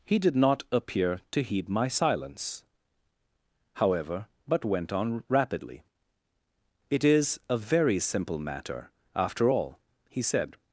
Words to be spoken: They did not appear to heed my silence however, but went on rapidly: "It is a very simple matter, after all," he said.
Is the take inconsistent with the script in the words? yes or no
yes